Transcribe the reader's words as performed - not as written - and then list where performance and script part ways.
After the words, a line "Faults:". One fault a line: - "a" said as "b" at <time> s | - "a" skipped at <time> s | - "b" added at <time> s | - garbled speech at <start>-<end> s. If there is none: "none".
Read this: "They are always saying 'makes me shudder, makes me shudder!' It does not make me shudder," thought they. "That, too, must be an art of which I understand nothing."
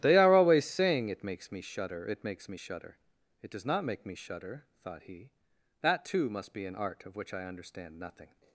"They are always saying 'it makes me shudder, it makes me shudder!' It does not make me shudder," thought he. "That, too, must be an art of which I understand nothing."
Faults:
- "it" added at 1.1 s
- "it" added at 2.1 s
- "they" said as "he" at 5.0 s